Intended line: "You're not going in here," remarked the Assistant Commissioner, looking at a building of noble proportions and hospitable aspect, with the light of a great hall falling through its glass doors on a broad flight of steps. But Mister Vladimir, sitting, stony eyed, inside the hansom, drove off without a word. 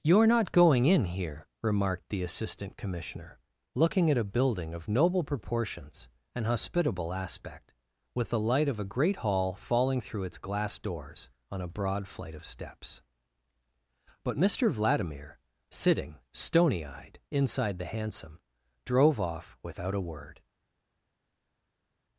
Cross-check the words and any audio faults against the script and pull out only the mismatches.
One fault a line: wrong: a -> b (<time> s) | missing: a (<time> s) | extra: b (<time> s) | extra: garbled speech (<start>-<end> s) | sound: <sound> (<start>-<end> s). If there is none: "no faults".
no faults